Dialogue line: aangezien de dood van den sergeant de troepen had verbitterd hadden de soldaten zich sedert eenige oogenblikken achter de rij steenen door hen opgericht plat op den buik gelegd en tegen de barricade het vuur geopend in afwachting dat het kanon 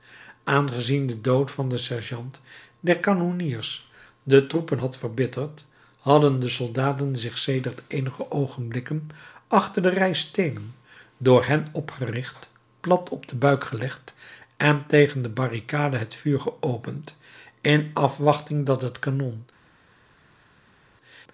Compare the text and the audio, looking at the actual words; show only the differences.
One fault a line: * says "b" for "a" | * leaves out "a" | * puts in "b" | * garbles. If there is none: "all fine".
* puts in "der kanonniers"